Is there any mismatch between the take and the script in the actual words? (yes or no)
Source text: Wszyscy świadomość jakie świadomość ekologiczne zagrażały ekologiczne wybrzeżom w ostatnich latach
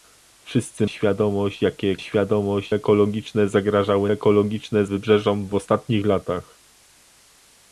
no